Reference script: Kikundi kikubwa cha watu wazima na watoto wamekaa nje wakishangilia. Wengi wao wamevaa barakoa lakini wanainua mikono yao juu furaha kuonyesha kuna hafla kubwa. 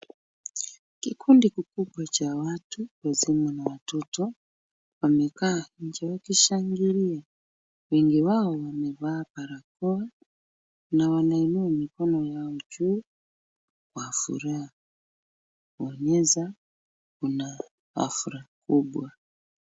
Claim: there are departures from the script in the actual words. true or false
true